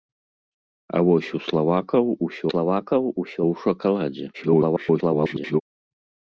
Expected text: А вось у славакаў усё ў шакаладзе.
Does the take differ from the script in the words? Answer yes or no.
yes